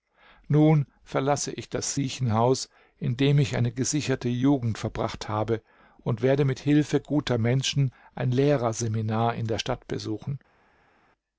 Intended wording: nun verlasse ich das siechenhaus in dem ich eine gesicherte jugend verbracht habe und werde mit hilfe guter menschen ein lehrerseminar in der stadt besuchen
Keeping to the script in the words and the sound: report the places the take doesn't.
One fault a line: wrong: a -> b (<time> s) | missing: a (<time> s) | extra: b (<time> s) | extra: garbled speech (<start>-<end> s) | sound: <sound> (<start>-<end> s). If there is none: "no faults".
no faults